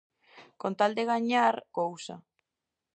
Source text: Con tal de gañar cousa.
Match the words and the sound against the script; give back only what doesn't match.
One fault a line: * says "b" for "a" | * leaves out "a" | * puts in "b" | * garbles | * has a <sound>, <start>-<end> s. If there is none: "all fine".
all fine